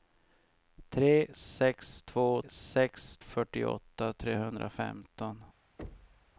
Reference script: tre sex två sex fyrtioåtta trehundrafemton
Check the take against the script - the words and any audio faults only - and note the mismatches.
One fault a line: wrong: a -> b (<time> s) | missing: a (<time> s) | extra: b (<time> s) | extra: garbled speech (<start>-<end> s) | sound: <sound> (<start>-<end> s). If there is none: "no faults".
sound: thud (5.8-6.3 s)